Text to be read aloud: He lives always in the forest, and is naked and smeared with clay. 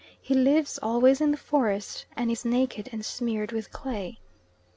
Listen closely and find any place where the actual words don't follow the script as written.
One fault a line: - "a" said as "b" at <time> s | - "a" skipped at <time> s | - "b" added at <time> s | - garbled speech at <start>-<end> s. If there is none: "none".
none